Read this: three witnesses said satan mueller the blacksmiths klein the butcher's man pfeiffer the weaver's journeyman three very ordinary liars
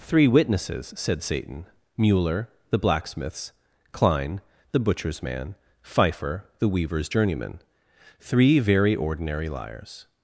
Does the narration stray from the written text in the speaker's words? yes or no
no